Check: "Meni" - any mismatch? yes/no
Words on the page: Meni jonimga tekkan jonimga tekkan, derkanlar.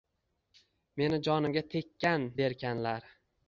no